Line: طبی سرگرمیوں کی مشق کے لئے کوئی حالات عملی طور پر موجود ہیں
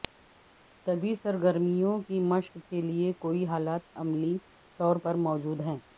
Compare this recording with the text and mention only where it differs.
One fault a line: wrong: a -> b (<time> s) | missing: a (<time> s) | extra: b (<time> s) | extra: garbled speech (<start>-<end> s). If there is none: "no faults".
no faults